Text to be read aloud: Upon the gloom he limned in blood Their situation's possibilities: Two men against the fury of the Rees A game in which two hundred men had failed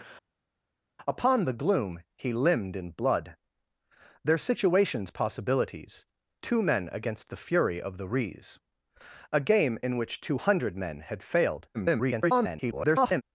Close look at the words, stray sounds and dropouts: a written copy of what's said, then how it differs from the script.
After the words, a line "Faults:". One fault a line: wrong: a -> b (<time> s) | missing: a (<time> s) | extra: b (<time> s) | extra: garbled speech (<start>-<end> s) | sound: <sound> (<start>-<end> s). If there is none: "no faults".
Upon the gloom he limned in blood Their situation's possibilities: Two men against the fury of the Rees A game in which two hundred men had failed [garbled]
Faults:
extra: garbled speech (11.7-13.2 s)